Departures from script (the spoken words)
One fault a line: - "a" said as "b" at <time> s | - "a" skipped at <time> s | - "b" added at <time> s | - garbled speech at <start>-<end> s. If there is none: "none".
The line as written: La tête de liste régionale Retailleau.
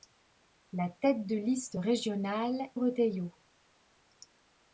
none